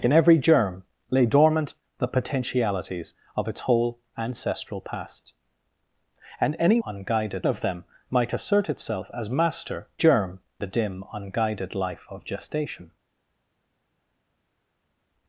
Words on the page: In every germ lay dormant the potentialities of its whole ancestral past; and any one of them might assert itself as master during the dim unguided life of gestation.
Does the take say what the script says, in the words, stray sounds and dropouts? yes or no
no